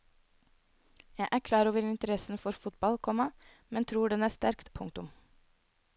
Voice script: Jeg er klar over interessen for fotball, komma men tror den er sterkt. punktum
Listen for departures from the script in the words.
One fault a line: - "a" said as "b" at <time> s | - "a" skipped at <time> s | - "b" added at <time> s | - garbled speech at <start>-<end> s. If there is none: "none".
none